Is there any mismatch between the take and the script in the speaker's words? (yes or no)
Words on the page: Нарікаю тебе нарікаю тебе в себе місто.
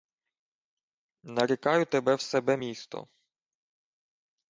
yes